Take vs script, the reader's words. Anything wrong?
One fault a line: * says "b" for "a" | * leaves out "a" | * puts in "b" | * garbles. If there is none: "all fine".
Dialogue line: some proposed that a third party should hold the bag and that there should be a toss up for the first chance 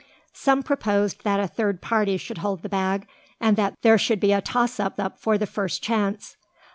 * puts in "up"